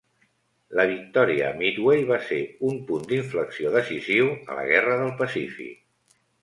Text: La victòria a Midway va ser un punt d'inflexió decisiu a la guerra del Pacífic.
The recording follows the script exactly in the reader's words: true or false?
true